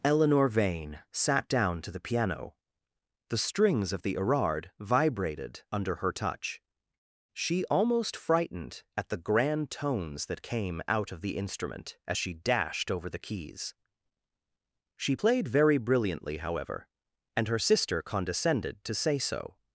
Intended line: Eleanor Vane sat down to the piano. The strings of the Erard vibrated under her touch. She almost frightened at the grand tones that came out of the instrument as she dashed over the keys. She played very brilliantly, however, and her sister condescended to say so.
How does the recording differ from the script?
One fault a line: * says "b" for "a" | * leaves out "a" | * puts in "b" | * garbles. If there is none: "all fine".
all fine